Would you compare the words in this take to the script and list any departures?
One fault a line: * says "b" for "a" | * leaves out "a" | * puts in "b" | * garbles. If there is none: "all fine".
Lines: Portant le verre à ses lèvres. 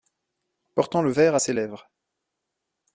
all fine